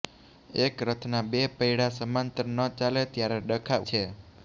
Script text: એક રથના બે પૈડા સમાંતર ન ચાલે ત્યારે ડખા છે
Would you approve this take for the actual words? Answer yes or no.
yes